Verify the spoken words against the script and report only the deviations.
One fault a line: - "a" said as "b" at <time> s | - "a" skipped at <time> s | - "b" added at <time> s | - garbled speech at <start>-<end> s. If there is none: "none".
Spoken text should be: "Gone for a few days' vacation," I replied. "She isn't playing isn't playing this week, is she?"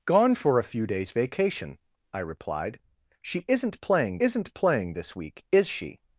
none